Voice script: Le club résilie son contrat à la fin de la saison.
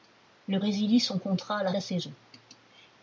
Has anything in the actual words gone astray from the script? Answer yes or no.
yes